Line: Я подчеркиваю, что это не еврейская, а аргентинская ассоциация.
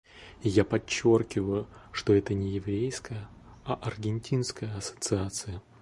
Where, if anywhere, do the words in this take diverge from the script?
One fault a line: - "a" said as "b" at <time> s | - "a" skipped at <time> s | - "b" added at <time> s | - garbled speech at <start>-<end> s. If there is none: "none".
none